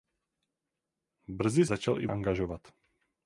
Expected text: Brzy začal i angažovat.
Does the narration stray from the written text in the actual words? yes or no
no